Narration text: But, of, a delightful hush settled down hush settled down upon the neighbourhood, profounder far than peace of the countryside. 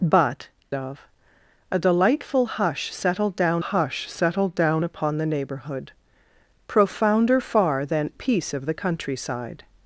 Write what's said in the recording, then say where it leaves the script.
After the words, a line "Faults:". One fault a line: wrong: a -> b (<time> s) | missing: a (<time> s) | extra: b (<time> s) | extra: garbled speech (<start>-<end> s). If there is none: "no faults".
But, of, a delightful hush settled down hush settled down upon the neighbourhood, profounder far than peace of the countryside.
Faults:
no faults